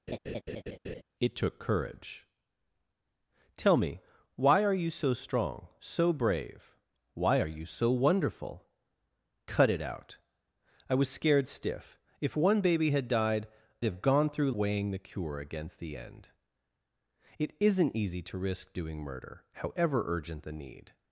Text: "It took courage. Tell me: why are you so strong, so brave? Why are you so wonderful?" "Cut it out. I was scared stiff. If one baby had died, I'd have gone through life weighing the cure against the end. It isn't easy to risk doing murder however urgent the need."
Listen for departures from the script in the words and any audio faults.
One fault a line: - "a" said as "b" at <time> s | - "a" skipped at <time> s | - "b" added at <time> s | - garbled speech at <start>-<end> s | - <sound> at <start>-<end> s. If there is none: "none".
- laugh at 0.1-1.0 s
- "I'd" skipped at 13.5 s
- "life" skipped at 14.5 s